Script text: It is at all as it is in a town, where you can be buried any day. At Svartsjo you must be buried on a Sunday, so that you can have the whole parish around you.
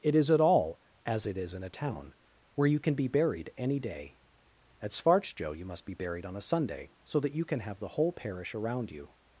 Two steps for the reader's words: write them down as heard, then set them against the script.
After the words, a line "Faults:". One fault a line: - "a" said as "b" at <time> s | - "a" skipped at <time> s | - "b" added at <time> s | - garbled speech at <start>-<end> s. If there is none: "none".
It is at all as it is in a town, where you can be buried any day. At Svartsjo you must be buried on a Sunday, so that you can have the whole parish around you.
Faults:
none